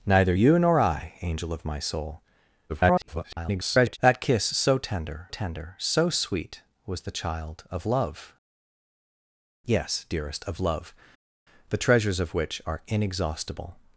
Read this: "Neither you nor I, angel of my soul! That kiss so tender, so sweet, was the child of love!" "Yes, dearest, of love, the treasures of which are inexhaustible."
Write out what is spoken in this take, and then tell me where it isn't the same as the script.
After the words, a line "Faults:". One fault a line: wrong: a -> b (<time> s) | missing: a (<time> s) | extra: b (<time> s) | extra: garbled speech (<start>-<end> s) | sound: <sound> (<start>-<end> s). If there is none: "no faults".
"Neither you nor I, angel of my soul! [garbled] That kiss so tender tender, so sweet, was the child of love!" "Yes, dearest, of love, the treasures of which are inexhaustible."
Faults:
extra: garbled speech (2.7-4.0 s)
extra: tender (5.3 s)